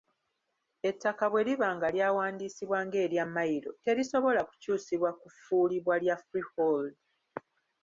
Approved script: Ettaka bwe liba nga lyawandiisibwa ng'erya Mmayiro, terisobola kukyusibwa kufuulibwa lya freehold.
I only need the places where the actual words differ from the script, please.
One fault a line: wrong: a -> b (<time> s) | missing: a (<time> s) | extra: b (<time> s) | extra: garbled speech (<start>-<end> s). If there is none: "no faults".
no faults